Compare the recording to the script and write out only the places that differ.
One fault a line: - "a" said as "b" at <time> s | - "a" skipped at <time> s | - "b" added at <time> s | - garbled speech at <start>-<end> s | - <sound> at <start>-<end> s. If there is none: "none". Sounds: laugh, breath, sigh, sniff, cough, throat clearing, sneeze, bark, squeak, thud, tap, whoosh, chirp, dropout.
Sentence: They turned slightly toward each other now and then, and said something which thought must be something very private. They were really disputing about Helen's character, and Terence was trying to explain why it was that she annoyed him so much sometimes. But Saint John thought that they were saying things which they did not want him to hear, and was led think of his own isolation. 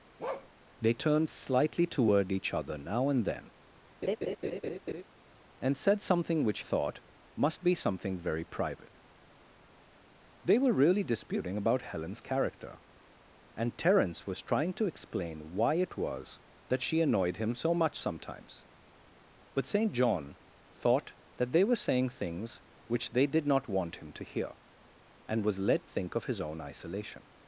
- bark at 0.2-0.5 s
- laugh at 4.0-5.0 s